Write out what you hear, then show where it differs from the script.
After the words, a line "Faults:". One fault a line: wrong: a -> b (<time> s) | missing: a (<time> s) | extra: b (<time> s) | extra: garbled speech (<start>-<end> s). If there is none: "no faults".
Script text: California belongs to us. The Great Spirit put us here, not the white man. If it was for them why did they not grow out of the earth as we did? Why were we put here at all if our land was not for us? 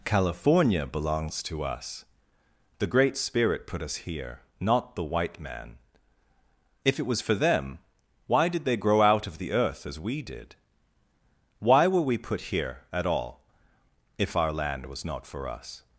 California belongs to us. The Great Spirit put us here, not the white man. If it was for them why did they grow out of the earth as we did? Why were we put here at all if our land was not for us?
Faults:
missing: not (8.8 s)